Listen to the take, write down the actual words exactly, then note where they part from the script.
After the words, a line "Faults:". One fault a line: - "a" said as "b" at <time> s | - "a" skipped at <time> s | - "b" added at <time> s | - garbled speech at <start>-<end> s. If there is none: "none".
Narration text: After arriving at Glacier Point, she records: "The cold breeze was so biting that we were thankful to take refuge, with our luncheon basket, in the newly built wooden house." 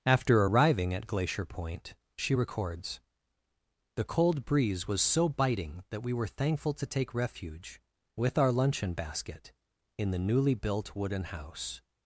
After arriving at Glacier Point, she records: "The cold breeze was so biting that we were thankful to take refuge, with our luncheon basket, in the newly built wooden house."
Faults:
none